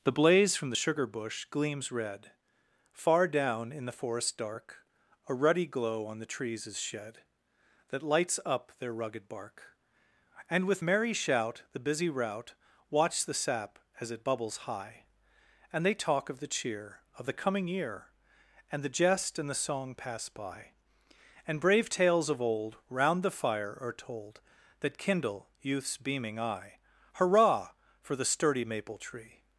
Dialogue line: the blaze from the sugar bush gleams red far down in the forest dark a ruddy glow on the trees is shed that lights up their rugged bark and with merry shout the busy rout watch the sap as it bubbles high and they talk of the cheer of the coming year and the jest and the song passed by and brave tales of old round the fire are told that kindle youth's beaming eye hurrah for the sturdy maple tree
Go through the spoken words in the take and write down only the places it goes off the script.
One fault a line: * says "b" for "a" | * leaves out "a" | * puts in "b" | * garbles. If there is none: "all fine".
* says "pass" for "passed"